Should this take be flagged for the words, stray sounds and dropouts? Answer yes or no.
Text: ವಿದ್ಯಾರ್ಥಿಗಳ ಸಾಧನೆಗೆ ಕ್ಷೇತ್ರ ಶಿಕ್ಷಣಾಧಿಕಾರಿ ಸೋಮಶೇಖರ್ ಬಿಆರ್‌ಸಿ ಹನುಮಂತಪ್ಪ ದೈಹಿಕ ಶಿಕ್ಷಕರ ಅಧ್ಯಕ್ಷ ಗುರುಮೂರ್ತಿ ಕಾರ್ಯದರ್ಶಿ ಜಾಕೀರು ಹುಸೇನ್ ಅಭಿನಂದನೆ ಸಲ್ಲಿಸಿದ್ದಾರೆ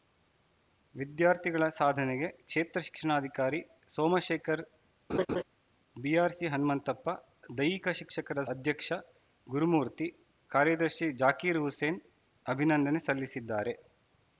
yes